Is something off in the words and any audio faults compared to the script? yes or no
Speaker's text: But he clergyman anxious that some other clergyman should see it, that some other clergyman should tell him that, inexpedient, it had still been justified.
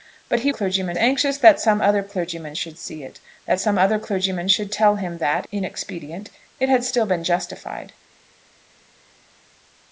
no